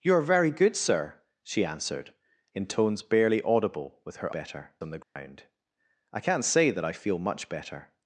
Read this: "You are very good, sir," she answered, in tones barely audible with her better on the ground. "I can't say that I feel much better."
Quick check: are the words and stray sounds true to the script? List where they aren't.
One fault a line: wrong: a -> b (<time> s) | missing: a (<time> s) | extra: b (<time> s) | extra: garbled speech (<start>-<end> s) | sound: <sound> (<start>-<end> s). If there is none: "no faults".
sound: dropout (5.0-5.2 s)